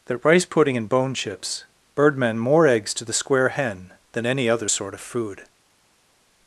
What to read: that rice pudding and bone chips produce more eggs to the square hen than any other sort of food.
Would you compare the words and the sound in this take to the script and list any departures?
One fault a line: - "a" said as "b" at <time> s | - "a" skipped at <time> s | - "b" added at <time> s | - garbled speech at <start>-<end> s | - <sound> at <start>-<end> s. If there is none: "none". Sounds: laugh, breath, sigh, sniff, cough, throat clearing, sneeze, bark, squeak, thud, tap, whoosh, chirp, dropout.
- "produce" said as "birdmen" at 1.9 s